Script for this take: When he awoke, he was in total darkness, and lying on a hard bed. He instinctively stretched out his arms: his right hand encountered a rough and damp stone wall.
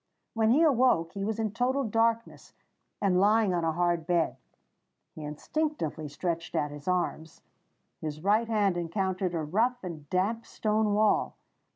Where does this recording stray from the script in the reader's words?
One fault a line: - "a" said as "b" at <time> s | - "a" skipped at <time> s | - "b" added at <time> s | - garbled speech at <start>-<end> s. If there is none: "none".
none